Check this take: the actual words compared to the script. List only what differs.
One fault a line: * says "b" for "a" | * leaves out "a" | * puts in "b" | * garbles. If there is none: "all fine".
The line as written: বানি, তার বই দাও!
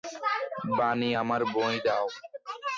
* says "আমার" for "তার"